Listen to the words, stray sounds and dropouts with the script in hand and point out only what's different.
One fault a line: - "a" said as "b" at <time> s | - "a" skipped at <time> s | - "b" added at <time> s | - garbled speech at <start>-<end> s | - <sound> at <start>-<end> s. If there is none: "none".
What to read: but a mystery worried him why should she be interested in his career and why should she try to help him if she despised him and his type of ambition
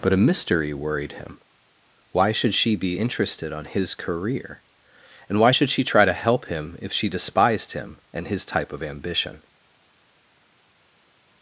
- "in" said as "on" at 3.5 s